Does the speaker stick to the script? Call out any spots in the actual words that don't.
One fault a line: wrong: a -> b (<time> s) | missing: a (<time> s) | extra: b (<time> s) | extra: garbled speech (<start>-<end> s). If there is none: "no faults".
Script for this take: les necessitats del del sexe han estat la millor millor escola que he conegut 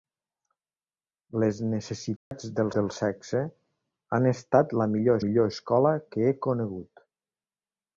no faults